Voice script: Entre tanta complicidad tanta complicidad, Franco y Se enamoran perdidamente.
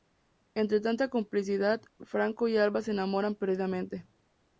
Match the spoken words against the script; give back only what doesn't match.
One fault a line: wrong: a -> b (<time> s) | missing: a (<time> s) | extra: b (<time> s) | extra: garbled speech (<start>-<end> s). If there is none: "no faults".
missing: tanta complicidad (1.8 s)
extra: Alba (2.6 s)